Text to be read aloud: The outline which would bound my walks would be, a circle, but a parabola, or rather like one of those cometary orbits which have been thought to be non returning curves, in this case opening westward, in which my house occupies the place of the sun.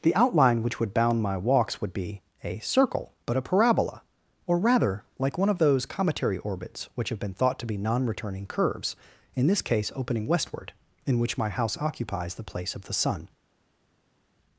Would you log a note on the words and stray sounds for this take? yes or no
no